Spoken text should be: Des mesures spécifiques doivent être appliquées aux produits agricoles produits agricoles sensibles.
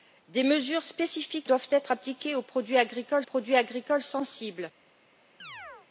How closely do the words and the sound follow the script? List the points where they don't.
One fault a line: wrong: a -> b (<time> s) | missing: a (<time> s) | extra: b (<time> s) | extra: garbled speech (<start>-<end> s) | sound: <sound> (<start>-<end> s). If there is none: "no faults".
sound: chirp (5.4-5.9 s)